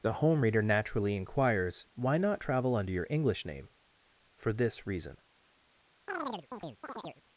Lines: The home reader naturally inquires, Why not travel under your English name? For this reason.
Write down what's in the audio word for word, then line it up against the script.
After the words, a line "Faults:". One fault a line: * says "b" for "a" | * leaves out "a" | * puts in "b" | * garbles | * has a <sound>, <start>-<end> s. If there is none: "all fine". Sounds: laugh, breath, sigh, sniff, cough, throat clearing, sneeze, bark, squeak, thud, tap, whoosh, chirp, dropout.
The home reader naturally inquires, Why not travel under your English name? For this reason.
Faults:
* has a chirp, 6.1-7.2 s